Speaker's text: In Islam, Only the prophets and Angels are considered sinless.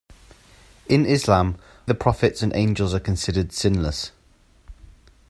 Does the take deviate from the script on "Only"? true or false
true